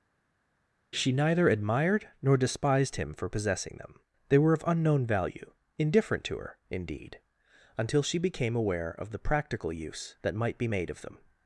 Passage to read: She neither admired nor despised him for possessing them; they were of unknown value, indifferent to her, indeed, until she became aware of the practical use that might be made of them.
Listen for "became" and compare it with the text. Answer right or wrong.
right